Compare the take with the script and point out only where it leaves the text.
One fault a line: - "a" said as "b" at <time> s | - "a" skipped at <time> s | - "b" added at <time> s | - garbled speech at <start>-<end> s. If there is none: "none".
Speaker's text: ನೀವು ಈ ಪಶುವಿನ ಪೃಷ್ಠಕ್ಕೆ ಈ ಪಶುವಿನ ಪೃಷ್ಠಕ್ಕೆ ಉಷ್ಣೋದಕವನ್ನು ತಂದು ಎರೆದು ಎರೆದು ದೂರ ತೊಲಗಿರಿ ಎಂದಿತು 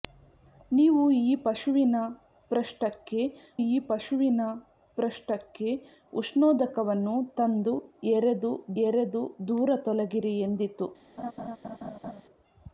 none